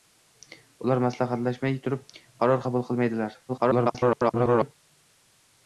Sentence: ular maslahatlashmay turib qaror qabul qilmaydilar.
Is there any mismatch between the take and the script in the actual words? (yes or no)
yes